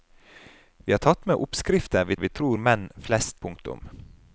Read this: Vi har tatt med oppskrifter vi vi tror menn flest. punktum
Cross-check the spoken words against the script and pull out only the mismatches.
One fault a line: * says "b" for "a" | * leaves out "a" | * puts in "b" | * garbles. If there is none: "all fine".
all fine